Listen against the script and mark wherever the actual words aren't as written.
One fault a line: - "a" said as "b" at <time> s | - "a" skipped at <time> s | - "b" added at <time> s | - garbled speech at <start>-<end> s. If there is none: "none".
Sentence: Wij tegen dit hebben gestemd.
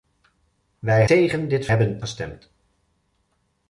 none